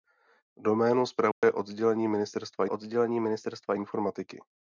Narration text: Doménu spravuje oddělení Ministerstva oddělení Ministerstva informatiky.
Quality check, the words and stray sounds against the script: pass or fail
fail